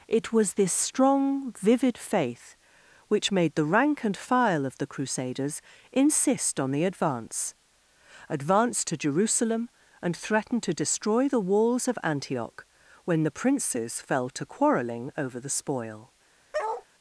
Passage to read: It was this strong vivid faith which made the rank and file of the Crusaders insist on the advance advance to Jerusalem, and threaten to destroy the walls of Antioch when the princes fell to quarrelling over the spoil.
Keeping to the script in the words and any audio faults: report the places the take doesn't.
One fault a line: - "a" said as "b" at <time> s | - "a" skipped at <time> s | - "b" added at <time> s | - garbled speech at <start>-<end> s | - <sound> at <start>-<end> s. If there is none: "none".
- bark at 16.5-16.9 s